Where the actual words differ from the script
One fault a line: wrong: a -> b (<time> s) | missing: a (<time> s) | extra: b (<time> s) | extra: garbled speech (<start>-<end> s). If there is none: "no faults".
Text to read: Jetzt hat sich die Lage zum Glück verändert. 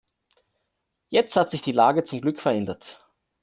no faults